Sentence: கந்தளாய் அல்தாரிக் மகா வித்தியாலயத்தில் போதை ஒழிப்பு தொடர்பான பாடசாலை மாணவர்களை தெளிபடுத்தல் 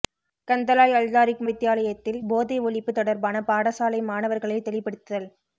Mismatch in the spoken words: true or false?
true